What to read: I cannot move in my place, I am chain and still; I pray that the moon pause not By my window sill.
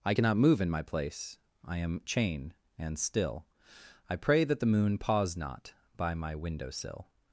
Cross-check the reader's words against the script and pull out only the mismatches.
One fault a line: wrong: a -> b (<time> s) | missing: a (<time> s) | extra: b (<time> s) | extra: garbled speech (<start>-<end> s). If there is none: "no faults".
no faults